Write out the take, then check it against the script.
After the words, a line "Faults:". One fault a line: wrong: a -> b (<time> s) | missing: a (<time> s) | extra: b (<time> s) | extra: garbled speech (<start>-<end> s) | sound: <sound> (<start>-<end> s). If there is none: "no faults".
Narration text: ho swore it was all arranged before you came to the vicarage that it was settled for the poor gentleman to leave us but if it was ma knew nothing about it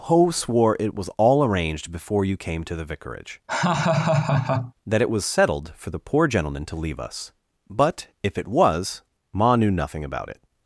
ho swore it was all arranged before you came to the vicarage that it was settled for the poor gentleman to leave us but if it was ma knew nothing about it
Faults:
sound: laugh (3.5-4.7 s)